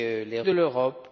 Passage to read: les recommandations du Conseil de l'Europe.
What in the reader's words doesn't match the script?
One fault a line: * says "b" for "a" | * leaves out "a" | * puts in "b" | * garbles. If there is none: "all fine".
* leaves out "recommandations du Conseil"